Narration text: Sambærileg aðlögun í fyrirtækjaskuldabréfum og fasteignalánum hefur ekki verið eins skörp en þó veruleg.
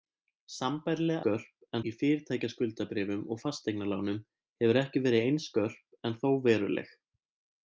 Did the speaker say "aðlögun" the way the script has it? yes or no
no